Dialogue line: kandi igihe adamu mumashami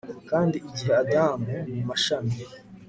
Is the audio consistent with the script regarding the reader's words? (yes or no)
yes